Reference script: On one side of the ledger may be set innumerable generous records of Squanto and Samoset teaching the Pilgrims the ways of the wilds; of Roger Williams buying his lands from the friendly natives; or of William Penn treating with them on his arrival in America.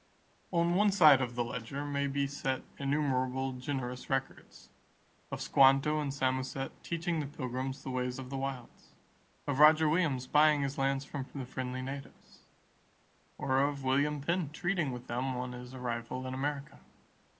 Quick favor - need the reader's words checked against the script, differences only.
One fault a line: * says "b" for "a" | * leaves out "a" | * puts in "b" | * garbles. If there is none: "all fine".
all fine